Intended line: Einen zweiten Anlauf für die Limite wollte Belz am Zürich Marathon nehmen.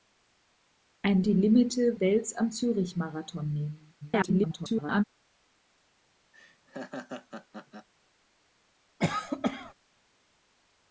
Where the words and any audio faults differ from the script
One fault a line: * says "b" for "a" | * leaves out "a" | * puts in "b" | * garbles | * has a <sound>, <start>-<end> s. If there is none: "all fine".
* leaves out "zweiten Anlauf für"
* leaves out "wollte"
* garbles
* has a laugh, 6.3-7.9 s
* has a cough, 9.0-9.7 s